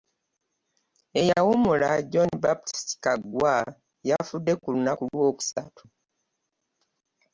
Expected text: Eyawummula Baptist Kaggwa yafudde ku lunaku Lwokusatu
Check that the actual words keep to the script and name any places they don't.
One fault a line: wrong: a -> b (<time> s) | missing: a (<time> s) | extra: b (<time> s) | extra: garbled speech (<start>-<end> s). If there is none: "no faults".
extra: John (2.1 s)